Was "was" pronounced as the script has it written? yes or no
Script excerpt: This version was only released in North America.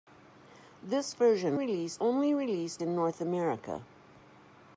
no